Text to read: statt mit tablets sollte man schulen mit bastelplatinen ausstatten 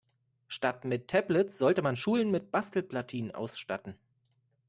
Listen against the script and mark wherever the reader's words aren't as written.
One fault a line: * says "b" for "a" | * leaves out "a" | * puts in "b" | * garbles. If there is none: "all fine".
all fine